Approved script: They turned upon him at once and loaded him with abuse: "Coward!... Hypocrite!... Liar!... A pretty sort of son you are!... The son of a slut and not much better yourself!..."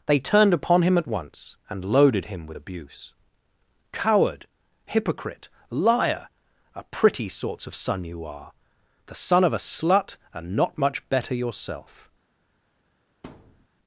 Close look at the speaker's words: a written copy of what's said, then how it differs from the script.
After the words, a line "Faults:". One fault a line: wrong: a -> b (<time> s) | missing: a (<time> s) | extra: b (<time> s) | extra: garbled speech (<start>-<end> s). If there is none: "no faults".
They turned upon him at once and loaded him with abuse: "Coward!... Hypocrite!... Liar!... A pretty sorts of son you are!... The son of a slut and not much better yourself!..."
Faults:
wrong: sort -> sorts (7.3 s)